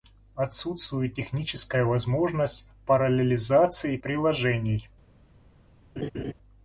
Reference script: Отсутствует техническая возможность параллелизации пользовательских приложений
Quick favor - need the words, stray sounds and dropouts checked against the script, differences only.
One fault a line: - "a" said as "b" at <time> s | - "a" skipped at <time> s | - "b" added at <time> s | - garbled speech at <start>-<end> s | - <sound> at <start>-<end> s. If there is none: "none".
- "пользовательских" skipped at 4.0 s
- laugh at 6.0-6.3 s